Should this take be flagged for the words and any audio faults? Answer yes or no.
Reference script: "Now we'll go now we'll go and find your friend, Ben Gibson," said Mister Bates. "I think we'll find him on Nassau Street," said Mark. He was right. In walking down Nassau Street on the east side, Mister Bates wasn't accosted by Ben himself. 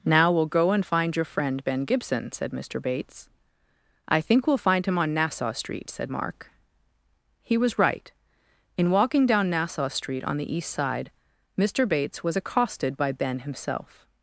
yes